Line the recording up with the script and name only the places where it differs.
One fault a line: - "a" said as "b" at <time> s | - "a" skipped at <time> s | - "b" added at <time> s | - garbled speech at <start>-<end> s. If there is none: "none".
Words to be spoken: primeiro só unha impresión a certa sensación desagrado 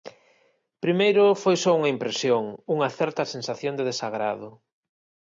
- "foi" added at 1.4 s
- "a" said as "unha" at 2.8 s
- "de" added at 3.8 s